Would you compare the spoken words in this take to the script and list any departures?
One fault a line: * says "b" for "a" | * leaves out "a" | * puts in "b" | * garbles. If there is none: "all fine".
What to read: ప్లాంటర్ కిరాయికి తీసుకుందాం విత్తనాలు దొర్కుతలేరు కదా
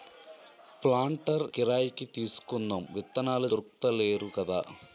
all fine